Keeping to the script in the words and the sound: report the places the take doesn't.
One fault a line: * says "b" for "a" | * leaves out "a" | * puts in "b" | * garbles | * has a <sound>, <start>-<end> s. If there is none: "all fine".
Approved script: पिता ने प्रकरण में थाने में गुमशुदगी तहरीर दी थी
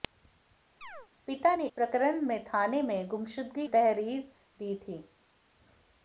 * has a chirp, 0.8-1.1 s